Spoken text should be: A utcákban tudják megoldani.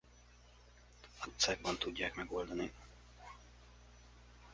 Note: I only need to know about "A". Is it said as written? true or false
true